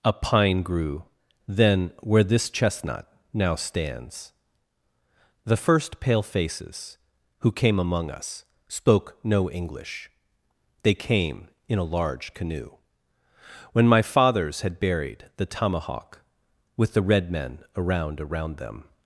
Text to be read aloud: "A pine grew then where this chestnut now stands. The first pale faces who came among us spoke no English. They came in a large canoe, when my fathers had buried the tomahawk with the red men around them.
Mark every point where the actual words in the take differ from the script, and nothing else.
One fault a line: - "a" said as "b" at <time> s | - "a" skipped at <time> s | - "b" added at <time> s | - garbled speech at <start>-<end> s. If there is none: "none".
- "around" added at 18.2 s